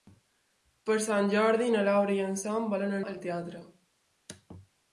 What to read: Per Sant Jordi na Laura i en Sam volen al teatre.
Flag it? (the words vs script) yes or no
no